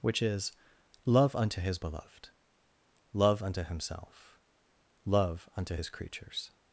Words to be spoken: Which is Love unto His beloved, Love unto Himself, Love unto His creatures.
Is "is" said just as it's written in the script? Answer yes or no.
yes